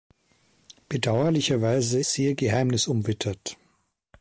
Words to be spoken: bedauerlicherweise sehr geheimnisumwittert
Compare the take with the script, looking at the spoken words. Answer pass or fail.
pass